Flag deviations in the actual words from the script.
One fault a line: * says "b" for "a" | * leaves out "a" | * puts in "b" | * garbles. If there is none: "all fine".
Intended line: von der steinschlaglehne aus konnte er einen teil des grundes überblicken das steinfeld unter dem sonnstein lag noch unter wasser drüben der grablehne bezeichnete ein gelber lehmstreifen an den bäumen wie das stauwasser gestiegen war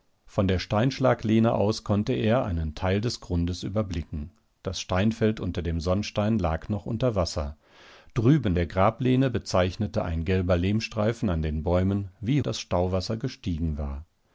all fine